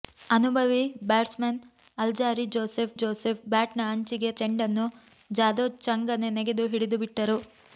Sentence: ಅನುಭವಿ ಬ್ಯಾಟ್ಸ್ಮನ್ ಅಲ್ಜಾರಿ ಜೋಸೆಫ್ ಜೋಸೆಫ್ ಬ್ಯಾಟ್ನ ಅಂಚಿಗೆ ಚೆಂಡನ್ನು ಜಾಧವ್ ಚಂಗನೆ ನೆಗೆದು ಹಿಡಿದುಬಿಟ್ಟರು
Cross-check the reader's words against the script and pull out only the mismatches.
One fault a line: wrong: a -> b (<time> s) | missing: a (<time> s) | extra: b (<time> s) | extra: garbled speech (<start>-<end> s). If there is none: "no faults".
no faults